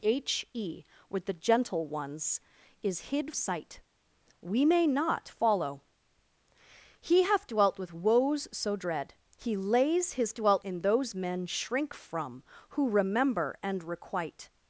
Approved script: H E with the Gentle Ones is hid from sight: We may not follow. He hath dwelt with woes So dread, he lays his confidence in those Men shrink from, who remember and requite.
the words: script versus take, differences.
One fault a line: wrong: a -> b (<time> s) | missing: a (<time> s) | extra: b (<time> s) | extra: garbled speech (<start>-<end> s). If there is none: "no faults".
missing: from (3.3 s)
wrong: confidence -> dwelt (10.3 s)